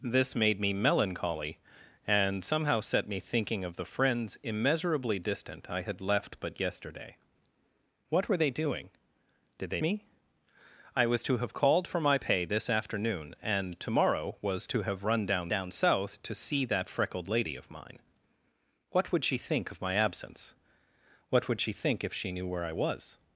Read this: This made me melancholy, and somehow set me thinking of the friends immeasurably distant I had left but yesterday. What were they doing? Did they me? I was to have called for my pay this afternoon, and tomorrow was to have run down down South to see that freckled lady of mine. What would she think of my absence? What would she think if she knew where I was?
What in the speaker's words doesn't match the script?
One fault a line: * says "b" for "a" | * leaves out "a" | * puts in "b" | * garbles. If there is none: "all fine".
all fine